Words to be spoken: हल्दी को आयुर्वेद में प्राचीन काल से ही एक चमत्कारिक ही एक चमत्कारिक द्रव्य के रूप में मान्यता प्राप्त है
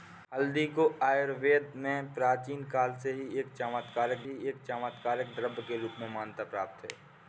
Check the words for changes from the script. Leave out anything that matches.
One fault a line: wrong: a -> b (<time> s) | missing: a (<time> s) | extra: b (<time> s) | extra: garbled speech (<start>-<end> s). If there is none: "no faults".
no faults